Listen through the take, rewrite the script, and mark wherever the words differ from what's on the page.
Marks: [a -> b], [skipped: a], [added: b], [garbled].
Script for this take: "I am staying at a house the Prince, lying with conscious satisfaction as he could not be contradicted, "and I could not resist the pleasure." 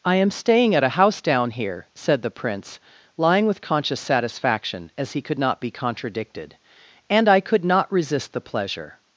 "I am staying at a house [added: down here said] the Prince, lying with conscious satisfaction as he could not be contradicted, "and I could not resist the pleasure."